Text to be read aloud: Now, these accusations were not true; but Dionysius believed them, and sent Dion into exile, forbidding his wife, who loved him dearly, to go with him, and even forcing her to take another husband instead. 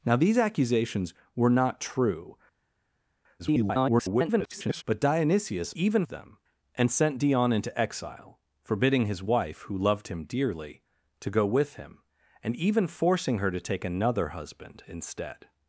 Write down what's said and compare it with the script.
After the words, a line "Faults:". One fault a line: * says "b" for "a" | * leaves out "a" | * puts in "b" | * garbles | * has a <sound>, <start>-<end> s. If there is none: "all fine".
Now, these accusations were not true; [garbled] but Dionysius even them, and sent Dion into exile, forbidding his wife, who loved him dearly, to go with him, and even forcing her to take another husband instead.
Faults:
* garbles
* says "even" for "believed"